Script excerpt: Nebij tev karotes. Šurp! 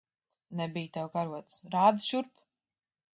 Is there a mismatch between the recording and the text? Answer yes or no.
yes